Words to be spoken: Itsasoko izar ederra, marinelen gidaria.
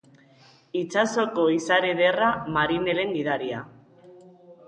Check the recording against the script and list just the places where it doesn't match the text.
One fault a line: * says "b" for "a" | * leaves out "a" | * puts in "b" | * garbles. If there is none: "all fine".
all fine